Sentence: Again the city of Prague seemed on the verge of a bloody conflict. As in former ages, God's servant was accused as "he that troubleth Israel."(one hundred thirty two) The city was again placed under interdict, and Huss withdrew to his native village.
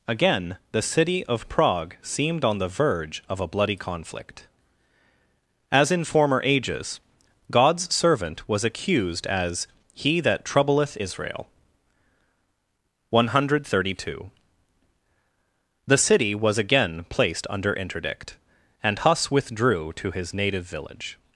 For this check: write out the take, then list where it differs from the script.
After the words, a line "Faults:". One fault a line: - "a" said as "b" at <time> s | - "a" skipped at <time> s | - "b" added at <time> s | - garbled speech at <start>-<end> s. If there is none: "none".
Again the city of Prague seemed on the verge of a bloody conflict. As in former ages, God's servant was accused as "he that troubleth Israel."(one hundred thirty two) The city was again placed under interdict, and Huss withdrew to his native village.
Faults:
none